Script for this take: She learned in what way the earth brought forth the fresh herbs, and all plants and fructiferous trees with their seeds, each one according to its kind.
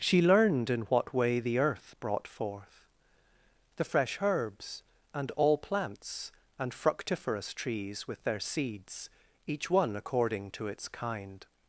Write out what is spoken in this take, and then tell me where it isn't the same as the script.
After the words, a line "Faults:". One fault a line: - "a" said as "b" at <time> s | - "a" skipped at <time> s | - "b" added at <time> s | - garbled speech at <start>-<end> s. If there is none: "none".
She learned in what way the earth brought forth the fresh herbs, and all plants and fructiferous trees with their seeds, each one according to its kind.
Faults:
none